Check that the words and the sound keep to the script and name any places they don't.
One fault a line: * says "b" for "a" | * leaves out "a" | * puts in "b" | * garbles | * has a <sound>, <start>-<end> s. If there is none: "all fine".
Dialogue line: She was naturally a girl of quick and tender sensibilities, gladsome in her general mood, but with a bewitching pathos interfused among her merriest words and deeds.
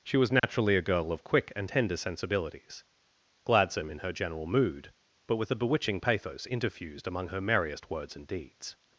* has a dropout, 0.4-0.4 s